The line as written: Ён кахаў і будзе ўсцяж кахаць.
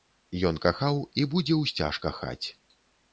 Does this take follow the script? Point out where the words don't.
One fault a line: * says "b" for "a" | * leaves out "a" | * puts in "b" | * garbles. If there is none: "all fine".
all fine